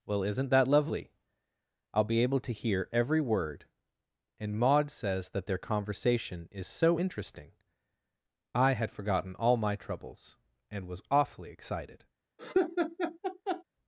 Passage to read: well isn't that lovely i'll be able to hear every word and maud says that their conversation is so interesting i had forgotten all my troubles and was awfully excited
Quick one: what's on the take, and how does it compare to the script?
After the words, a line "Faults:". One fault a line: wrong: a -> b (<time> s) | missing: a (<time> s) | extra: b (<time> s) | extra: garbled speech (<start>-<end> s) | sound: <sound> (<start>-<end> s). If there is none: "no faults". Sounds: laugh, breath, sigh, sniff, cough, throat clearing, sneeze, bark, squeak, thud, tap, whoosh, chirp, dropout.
well isn't that lovely i'll be able to hear every word and maud says that their conversation is so interesting i had forgotten all my troubles and was awfully excited
Faults:
sound: laugh (12.4-13.6 s)